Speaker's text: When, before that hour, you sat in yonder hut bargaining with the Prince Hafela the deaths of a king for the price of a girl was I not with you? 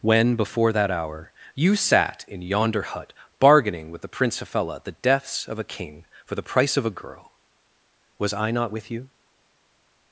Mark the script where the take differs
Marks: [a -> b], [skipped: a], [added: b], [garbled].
When, before that hour, you sat in yonder hut bargaining with the Prince Hafela the deaths of a king for the price of a girl was I not with you?